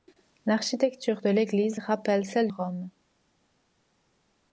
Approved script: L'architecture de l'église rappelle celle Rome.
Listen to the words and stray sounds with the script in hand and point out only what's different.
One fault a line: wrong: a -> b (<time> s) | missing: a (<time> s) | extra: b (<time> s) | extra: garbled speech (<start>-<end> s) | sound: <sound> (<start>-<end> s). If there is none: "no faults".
no faults